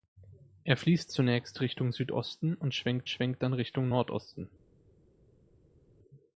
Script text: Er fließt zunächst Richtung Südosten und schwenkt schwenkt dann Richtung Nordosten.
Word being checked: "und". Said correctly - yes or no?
yes